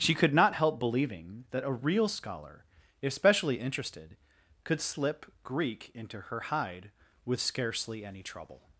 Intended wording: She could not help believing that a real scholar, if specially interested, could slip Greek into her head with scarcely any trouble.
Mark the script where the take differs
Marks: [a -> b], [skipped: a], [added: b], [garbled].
She could not help believing that a real scholar, if specially interested, could slip Greek into her [head -> hide] with scarcely any trouble.